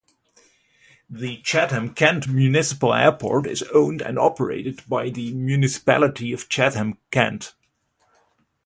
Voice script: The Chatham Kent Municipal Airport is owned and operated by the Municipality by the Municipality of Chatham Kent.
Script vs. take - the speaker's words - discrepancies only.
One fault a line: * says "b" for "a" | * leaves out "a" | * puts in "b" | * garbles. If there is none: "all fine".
* leaves out "by the Municipality"